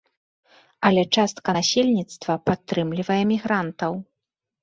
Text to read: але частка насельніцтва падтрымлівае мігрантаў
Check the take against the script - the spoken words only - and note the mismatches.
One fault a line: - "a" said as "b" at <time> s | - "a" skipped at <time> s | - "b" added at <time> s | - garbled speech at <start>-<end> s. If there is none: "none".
none